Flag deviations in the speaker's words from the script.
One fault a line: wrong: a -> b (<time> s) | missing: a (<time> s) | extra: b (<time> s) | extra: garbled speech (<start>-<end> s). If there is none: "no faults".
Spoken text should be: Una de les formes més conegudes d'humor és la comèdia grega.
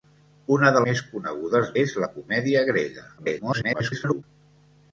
missing: les formes (0.8 s)
missing: d'humor (1.7 s)
extra: garbled speech (3.2-4.2 s)